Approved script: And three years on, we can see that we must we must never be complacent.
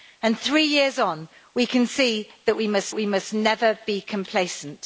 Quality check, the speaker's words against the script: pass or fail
pass